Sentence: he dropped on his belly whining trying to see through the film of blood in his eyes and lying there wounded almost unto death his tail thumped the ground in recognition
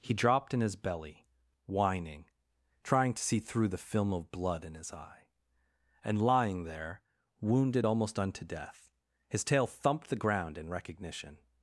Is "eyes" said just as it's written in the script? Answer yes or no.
no